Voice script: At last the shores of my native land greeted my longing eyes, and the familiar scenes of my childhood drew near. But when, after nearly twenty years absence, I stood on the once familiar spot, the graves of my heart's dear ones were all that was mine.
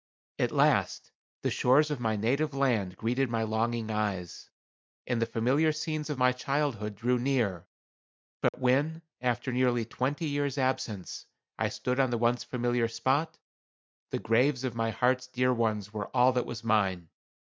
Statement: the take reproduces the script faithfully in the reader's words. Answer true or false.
true